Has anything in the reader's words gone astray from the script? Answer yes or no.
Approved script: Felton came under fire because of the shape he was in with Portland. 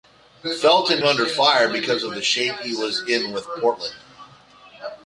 yes